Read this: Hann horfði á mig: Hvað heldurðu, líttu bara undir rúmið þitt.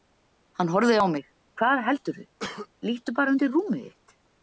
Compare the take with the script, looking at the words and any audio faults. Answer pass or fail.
fail